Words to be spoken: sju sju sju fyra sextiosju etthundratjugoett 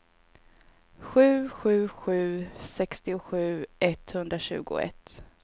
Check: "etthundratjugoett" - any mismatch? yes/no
no